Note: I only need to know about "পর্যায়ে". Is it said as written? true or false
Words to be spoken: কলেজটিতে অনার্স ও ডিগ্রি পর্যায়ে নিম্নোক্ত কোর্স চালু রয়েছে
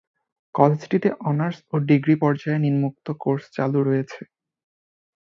true